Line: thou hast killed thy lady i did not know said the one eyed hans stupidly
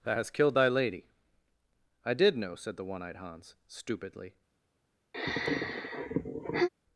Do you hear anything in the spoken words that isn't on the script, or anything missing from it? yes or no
yes